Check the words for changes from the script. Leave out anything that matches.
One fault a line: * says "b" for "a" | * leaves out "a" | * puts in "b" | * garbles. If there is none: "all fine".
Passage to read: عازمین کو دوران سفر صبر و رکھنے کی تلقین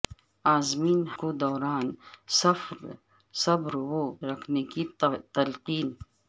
all fine